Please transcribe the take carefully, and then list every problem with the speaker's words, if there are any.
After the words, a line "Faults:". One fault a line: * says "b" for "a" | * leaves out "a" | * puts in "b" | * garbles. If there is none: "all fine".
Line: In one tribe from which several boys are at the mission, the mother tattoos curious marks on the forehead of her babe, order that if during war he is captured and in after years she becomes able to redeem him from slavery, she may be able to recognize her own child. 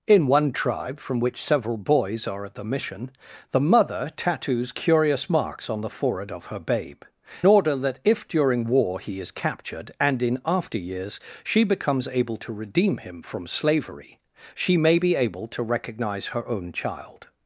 In one tribe from which several boys are at the mission, the mother tattoos curious marks on the forehead of her babe, order that if during war he is captured and in after years she becomes able to redeem him from slavery, she may be able to recognize her own child.
Faults:
all fine